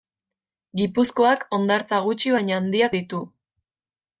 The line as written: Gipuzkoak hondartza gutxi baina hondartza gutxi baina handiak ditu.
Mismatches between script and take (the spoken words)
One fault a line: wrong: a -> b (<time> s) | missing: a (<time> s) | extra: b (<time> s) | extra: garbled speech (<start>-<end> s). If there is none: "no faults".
missing: hondartza gutxi baina (2.6 s)